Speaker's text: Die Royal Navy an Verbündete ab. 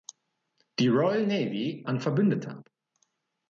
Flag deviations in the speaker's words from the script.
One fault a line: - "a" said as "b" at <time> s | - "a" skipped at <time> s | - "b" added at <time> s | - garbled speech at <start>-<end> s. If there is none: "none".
none